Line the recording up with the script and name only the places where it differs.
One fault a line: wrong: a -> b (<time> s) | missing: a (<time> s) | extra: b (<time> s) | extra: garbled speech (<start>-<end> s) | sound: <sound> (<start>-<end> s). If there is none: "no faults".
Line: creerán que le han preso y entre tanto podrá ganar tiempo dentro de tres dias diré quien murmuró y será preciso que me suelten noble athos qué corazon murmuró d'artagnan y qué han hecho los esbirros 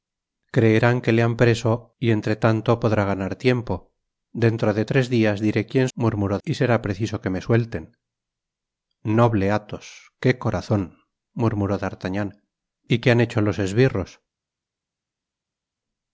no faults